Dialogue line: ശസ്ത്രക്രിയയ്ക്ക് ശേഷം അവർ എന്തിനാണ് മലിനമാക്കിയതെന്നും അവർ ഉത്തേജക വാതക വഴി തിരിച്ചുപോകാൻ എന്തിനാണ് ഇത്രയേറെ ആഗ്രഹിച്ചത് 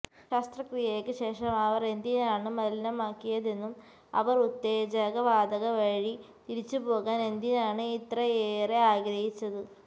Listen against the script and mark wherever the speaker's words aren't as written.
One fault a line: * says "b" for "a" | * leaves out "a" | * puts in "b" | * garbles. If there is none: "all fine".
all fine